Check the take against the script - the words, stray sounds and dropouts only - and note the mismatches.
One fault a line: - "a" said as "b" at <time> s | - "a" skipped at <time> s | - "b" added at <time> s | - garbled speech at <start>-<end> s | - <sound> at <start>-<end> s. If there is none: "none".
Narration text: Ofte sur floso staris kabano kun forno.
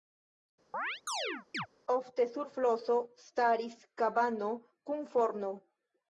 - chirp at 0.7-1.7 s